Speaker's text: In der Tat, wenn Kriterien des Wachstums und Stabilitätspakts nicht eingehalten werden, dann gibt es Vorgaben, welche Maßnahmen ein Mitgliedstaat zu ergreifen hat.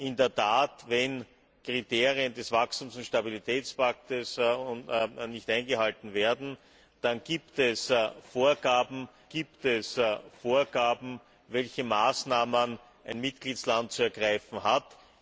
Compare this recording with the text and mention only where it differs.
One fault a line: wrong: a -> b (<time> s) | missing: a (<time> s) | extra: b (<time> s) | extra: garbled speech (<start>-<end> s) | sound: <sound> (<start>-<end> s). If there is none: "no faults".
extra: gibt es Vorgaben (9.3 s)